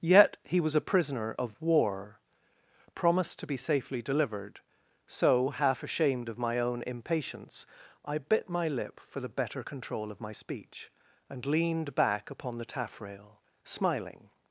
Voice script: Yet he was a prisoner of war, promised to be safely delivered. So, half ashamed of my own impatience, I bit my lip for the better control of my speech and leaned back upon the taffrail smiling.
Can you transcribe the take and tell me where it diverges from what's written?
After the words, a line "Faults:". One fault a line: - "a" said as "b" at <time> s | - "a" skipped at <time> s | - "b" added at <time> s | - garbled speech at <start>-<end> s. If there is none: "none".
Yet he was a prisoner of war, promised to be safely delivered. So, half ashamed of my own impatience, I bit my lip for the better control of my speech and leaned back upon the taffrail smiling.
Faults:
none